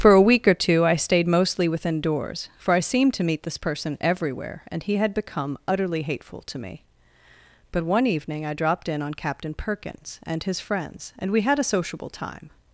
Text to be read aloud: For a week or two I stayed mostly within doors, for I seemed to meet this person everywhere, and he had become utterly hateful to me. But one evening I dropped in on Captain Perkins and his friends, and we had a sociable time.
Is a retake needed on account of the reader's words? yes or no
no